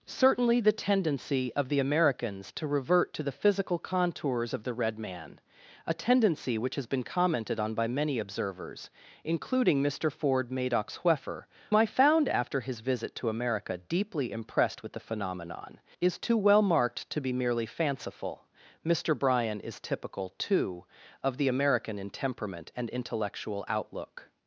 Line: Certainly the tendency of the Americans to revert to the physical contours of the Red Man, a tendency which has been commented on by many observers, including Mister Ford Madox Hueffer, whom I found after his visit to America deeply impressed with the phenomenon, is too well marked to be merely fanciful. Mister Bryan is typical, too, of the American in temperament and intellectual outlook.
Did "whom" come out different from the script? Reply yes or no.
yes